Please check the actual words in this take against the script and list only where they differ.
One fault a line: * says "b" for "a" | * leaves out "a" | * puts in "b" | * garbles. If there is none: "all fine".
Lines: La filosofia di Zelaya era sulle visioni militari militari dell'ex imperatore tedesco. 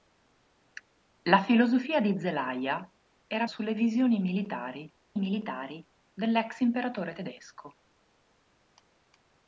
all fine